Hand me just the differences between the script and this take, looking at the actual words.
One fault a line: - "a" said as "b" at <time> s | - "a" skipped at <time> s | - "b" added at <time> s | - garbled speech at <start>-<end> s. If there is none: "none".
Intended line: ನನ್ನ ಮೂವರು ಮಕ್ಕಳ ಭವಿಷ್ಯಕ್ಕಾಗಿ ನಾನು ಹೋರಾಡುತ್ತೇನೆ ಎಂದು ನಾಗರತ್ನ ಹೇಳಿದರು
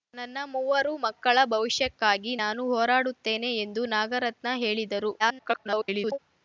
- garbled speech at 5.2-6.2 s